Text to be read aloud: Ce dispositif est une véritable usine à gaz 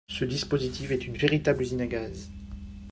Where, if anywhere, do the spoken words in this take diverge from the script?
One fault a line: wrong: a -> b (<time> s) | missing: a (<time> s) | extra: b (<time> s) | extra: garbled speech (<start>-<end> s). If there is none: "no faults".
no faults